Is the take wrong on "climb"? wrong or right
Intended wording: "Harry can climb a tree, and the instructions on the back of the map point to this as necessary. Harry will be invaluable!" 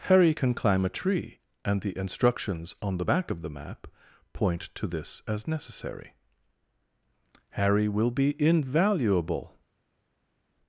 right